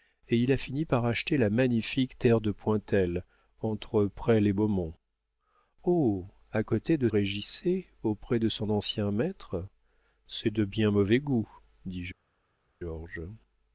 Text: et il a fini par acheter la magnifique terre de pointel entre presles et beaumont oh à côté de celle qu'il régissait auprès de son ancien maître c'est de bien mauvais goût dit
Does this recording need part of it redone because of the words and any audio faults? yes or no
yes